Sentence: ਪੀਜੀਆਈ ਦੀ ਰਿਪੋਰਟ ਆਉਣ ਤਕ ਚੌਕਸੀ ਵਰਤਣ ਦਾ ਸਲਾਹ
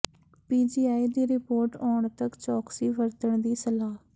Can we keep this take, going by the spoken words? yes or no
no